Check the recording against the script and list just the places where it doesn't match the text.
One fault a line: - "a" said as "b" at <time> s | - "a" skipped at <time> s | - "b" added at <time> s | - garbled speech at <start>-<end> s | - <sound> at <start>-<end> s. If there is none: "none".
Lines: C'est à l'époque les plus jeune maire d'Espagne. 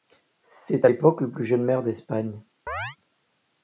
- "les" said as "le" at 1.2 s
- chirp at 2.7-3.0 s